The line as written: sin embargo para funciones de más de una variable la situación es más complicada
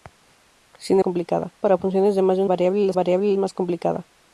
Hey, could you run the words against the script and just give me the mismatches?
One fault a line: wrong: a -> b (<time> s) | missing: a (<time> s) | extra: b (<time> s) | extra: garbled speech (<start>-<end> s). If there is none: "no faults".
wrong: embargo -> complicada (1.0 s)
missing: una (2.4 s)
wrong: situación -> variable (2.9 s)